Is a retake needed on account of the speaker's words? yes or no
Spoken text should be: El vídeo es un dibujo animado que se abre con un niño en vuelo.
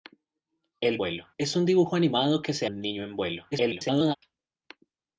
yes